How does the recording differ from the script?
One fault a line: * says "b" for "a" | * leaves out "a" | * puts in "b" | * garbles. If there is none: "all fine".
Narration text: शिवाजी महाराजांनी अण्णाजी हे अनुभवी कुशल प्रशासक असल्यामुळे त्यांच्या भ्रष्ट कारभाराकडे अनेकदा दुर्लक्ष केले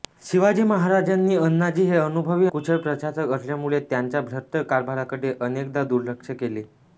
all fine